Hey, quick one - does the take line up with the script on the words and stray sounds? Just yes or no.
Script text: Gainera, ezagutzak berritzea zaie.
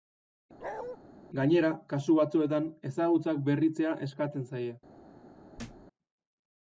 no